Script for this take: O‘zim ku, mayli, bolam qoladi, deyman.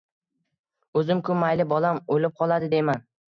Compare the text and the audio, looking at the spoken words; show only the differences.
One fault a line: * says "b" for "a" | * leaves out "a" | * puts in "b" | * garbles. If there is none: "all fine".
* puts in "o‘lib"